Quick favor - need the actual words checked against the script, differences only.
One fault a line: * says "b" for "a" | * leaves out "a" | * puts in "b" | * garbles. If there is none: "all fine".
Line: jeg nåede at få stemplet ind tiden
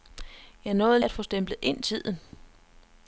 all fine